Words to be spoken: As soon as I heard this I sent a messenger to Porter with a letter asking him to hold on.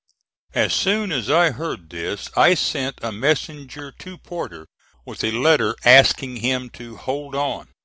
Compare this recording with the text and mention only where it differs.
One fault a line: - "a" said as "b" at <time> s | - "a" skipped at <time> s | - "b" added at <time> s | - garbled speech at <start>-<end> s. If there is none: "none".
none